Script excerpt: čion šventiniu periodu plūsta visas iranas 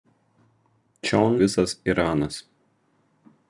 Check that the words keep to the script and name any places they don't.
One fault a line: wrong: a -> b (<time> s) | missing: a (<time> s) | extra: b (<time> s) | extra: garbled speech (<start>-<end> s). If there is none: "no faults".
missing: šventiniu periodu plūsta (1.4 s)